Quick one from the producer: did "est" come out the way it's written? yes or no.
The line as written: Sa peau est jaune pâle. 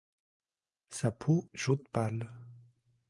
no